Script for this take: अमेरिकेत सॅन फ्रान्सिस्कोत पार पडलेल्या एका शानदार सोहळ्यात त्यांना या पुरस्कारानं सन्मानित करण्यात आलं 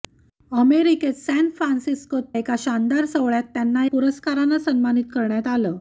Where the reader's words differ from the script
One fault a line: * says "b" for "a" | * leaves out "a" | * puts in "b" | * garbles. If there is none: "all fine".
* leaves out "पार पडलेल्या"
* leaves out "या"